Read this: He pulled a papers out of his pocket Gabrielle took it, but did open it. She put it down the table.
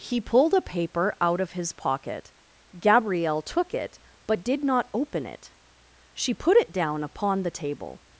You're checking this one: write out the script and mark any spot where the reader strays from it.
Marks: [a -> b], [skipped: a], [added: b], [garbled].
He pulled a [papers -> paper] out of his pocket Gabrielle took it, but did [added: not] open it. She put it down [added: upon] the table.